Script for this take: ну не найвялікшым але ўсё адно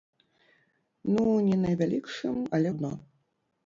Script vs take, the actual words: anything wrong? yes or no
yes